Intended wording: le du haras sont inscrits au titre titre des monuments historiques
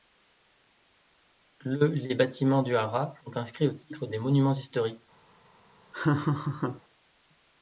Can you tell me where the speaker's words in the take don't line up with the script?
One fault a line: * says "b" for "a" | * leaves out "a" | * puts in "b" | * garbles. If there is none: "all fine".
* puts in "les bâtiments"
* leaves out "titre"